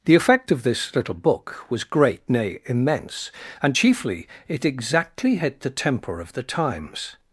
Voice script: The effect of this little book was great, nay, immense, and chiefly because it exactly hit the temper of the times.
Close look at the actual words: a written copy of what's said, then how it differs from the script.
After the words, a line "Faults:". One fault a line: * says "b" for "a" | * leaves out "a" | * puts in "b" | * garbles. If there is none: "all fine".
The effect of this little book was great, nay, immense, and chiefly it exactly hit the temper of the times.
Faults:
* leaves out "because"